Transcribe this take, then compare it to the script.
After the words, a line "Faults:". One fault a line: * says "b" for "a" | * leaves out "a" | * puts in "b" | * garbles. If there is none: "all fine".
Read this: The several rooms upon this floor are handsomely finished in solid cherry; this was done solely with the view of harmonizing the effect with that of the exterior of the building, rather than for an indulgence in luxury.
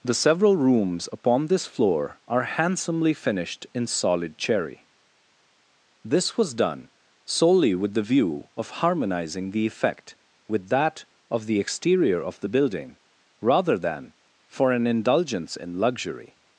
The several rooms upon this floor are handsomely finished in solid cherry; this was done solely with the view of harmonizing the effect with that of the exterior of the building, rather than for an indulgence in luxury.
Faults:
all fine